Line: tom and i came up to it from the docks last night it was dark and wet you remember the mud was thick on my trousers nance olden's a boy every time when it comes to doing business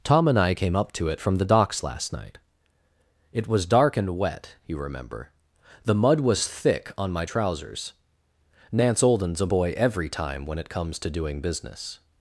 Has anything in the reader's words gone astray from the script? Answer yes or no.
no